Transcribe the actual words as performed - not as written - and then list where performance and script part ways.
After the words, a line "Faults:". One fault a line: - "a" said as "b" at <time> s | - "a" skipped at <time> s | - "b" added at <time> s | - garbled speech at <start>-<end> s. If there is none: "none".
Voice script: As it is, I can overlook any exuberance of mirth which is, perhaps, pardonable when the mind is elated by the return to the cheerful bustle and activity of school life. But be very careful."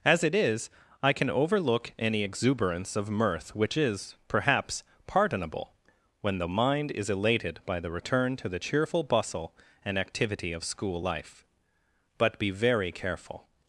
As it is, I can overlook any exuberance of mirth which is, perhaps, pardonable when the mind is elated by the return to the cheerful bustle and activity of school life. But be very careful."
Faults:
none